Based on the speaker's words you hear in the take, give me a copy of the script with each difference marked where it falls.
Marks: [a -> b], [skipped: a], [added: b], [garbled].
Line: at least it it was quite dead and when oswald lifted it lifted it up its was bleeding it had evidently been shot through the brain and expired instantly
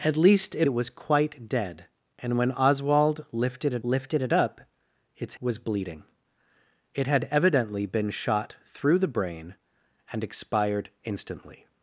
at least it it was quite dead and when oswald lifted it lifted it up its was bleeding it had evidently been shot through the brain and expired instantly